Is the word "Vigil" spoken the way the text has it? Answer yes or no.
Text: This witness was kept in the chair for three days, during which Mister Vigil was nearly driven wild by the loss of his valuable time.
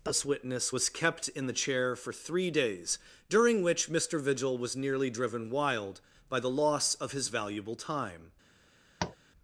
yes